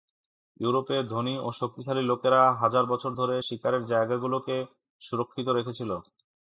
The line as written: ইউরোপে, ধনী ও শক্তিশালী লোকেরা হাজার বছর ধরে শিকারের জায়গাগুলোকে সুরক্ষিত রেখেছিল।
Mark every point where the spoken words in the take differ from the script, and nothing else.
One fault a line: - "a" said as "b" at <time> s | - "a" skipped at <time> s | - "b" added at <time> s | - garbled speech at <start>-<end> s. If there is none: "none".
none